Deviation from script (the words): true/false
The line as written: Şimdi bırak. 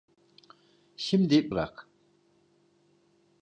false